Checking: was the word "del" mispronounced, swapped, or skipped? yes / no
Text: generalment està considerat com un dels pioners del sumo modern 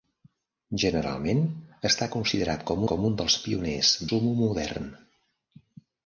yes